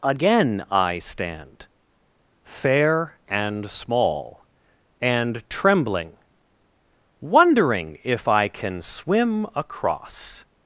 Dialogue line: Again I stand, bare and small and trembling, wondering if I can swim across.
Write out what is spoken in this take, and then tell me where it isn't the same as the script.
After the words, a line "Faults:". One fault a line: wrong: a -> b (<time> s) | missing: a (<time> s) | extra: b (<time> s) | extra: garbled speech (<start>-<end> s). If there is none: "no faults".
Again I stand, fair and small and trembling, wondering if I can swim across.
Faults:
wrong: bare -> fair (2.4 s)